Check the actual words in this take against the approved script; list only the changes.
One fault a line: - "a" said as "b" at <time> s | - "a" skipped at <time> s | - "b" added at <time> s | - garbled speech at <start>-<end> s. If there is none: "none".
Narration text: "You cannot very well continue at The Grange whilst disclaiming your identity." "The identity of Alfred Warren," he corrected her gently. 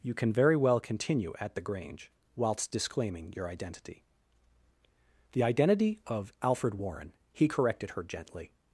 - "cannot" said as "can" at 0.1 s